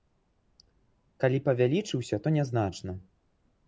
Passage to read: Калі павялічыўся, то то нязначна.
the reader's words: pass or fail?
fail